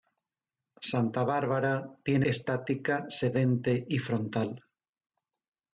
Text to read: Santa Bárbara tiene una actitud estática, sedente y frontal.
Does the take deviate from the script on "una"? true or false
true